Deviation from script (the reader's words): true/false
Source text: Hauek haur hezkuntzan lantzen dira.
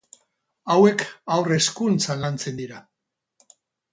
false